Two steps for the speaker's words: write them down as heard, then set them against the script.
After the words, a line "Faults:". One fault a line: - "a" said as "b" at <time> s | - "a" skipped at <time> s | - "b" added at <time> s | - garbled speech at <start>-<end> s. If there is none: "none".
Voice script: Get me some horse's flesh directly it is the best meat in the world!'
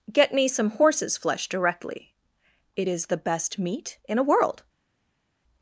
Get me some horse's flesh directly it is the best meat in a world!'
Faults:
- "the" said as "a" at 4.2 s